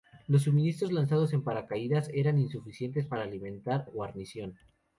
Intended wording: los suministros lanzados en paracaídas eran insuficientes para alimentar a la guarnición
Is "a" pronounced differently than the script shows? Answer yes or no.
yes